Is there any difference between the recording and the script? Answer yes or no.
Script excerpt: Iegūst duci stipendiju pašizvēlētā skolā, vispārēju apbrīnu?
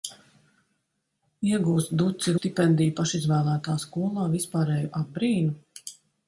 no